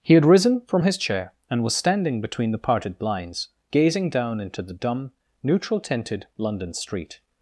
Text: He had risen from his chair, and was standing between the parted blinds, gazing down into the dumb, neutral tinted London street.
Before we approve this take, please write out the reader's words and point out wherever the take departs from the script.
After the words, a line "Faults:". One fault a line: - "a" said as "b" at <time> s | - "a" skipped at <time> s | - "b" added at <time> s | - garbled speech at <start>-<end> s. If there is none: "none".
He had risen from his chair, and was standing between the parted blinds, gazing down into the dumb, neutral tinted London street.
Faults:
none